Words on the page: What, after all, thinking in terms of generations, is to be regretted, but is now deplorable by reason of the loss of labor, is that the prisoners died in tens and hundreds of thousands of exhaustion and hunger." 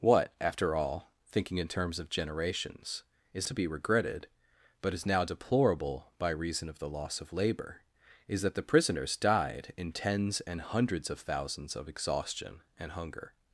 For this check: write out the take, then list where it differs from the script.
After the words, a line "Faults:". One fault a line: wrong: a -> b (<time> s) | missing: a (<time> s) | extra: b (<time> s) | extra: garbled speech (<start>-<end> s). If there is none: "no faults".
What, after all, thinking in terms of generations, is to be regretted, but is now deplorable by reason of the loss of labor, is that the prisoners died in tens and hundreds of thousands of exhaustion and hunger."
Faults:
no faults